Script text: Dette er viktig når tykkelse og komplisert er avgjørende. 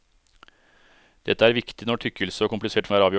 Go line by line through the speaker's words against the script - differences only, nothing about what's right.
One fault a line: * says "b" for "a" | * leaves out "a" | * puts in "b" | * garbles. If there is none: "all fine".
all fine